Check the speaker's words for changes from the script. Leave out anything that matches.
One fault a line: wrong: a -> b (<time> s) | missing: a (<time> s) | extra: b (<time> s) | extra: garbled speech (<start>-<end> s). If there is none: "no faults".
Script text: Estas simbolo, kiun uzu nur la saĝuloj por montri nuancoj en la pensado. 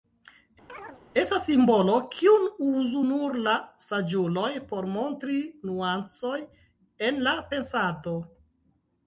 no faults